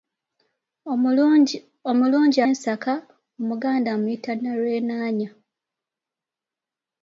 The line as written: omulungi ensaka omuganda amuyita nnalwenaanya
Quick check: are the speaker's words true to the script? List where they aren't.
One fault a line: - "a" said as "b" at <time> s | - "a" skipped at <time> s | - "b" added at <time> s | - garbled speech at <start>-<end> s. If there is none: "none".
none